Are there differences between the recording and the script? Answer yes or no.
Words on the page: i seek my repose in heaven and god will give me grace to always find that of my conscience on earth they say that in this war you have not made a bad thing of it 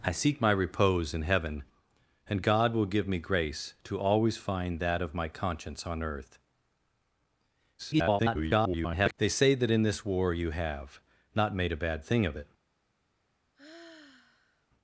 yes